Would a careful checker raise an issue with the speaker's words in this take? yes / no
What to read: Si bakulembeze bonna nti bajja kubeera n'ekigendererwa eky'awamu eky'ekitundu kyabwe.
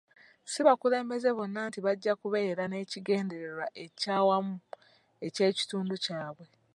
no